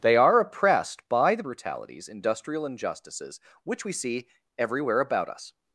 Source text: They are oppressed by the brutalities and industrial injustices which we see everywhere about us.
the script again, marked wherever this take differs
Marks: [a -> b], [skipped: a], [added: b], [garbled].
They are oppressed by the brutalities [skipped: and] industrial injustices which we see everywhere about us.